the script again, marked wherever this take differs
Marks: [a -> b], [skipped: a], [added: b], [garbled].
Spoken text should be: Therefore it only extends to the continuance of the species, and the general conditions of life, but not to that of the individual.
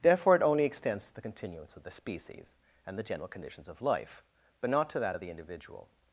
Therefore it only extends to the continuance of the species, and the general conditions of life, but not to that of the individual.